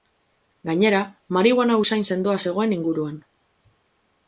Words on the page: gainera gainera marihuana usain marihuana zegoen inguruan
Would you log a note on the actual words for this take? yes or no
yes